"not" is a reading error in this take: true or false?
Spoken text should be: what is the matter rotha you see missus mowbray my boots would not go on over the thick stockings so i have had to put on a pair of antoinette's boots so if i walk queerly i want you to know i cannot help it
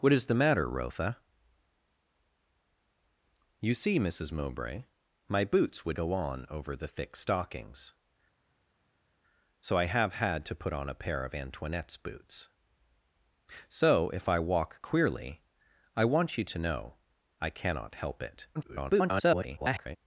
true